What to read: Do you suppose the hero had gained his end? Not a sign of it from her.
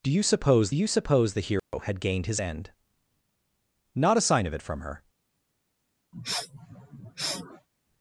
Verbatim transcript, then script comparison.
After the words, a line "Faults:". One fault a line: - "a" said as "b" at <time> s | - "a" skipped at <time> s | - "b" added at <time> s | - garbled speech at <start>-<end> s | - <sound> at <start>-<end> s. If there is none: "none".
Do you suppose you suppose the hero had gained his end? Not a sign of it from her.
Faults:
- "you suppose" added at 0.7 s
- dropout at 1.6-1.7 s
- sniff at 6.1-7.7 s